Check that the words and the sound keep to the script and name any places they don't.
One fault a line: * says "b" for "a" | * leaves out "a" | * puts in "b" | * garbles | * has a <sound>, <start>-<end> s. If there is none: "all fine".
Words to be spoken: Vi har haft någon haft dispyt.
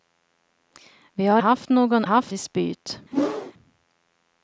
* has a whoosh, 3.1-3.5 s